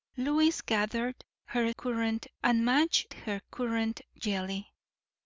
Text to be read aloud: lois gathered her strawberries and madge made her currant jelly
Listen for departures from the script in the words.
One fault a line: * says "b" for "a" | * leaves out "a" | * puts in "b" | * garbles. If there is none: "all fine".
* says "currant" for "strawberries"
* leaves out "made"